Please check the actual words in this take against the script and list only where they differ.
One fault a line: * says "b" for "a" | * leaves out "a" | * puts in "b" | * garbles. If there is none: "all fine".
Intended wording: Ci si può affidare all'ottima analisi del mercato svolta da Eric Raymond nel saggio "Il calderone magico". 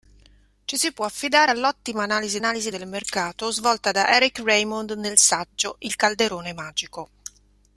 * puts in "analisi"